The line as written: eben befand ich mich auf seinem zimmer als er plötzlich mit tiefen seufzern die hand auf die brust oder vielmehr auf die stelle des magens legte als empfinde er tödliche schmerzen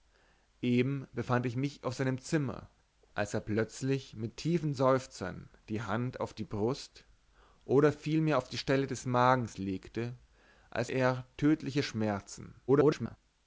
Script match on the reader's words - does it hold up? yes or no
no